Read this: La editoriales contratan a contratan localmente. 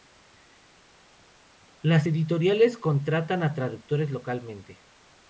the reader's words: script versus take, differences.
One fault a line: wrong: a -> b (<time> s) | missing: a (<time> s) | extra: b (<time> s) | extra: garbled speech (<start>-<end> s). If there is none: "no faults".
wrong: La -> Las (1.8 s)
wrong: contratan -> traductores (3.5 s)